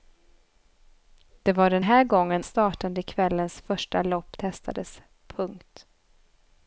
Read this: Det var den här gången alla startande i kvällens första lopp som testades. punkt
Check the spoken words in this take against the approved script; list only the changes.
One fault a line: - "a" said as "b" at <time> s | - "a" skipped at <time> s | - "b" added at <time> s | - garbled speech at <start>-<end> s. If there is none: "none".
- "alla" skipped at 2.4 s
- "som" skipped at 4.4 s